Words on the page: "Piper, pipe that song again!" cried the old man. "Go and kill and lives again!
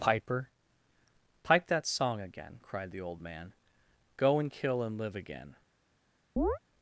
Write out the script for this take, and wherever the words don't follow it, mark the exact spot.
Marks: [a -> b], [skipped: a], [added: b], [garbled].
"Piper, pipe that song again!" cried the old man. "Go and kill and [lives -> live] again!